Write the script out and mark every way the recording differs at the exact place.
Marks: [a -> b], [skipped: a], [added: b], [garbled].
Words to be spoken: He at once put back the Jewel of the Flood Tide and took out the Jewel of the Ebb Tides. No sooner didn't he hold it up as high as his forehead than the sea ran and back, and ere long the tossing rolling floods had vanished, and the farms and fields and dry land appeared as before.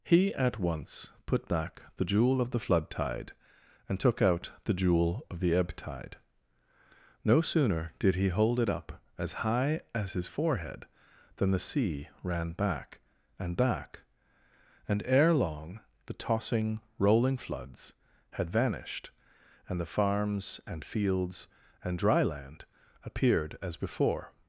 He at once put back the Jewel of the Flood Tide and took out the Jewel of the Ebb [Tides. -> Tide] No sooner [didn't -> did] he hold it up as high as his forehead than the sea ran [added: back] and back, and ere long the tossing rolling floods had vanished, and the farms and fields and dry land appeared as before.